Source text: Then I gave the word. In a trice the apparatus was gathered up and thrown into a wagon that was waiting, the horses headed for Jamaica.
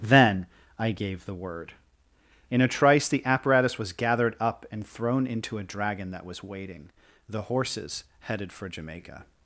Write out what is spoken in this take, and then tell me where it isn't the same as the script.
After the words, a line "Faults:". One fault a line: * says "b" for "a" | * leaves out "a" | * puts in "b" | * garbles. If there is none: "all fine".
Then I gave the word. In a trice the apparatus was gathered up and thrown into a dragon that was waiting, the horses headed for Jamaica.
Faults:
* says "dragon" for "wagon"